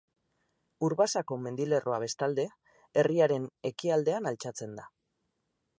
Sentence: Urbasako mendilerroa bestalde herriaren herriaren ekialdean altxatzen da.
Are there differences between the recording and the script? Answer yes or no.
yes